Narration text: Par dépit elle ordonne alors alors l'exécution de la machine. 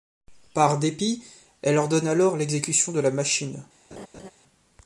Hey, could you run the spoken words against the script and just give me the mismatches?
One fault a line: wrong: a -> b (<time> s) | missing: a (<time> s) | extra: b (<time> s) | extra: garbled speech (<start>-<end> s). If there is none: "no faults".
missing: alors (2.4 s)